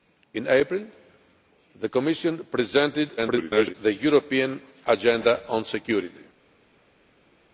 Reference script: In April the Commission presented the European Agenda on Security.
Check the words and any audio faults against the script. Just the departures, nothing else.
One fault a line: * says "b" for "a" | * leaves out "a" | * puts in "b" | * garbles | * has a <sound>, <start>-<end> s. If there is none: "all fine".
* garbles